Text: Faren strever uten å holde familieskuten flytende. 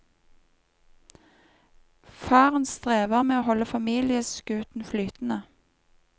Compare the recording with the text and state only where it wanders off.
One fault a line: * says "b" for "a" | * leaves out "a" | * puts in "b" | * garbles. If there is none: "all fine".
* says "med" for "uten"